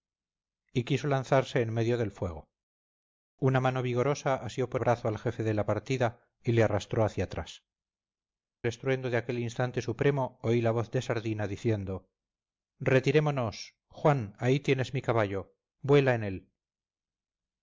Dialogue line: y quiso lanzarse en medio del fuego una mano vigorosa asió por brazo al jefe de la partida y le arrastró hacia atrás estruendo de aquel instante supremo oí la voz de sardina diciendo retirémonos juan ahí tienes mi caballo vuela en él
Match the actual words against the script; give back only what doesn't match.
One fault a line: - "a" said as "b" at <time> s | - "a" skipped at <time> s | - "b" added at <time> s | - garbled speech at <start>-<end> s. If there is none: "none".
none